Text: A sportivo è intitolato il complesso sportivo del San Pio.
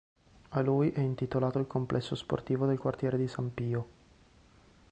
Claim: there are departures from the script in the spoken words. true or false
true